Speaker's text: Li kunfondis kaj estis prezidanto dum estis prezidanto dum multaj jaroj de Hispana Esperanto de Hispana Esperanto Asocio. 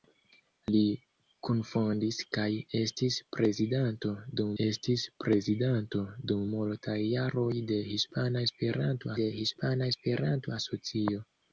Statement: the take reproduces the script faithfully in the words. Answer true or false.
true